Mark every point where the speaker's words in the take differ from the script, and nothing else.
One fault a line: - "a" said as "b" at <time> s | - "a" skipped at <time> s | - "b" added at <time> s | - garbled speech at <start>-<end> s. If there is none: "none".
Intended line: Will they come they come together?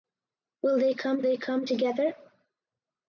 none